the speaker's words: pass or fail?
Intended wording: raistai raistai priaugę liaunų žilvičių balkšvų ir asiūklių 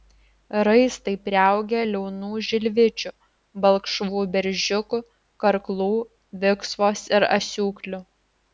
fail